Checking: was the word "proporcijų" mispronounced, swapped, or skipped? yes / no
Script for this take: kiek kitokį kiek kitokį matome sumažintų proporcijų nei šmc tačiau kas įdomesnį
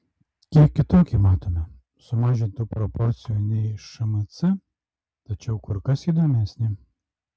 no